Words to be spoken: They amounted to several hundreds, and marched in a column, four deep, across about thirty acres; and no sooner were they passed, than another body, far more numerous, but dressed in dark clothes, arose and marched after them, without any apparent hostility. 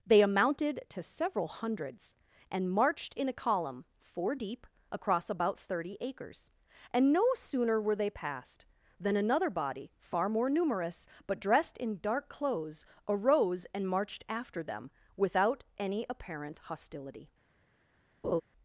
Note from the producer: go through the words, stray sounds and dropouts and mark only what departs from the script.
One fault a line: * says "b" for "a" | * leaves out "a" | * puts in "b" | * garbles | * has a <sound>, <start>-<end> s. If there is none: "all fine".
* has a laugh, 18.2-18.4 s